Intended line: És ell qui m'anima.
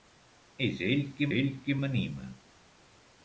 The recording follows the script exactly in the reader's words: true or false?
false